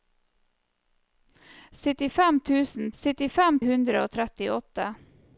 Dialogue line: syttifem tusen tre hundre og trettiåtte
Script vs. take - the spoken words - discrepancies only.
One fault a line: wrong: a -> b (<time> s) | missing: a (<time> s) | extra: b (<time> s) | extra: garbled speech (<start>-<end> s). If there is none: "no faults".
wrong: tre -> syttifem (3.0 s)